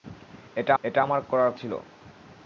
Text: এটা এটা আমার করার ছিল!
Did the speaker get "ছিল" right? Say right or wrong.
right